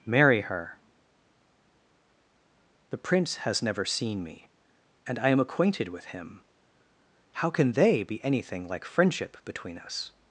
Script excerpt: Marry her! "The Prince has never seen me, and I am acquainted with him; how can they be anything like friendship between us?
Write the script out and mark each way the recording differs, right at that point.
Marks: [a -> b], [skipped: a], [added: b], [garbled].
Marry her! "The Prince has never seen me, and I am acquainted with him; how can they be anything like friendship between us?